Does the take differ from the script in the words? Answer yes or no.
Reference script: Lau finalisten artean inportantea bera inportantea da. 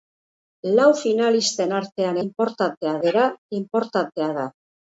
no